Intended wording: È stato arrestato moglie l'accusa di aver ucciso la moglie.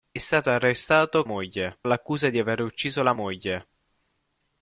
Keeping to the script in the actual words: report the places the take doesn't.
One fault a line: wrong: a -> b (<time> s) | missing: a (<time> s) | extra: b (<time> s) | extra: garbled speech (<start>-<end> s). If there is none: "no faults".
no faults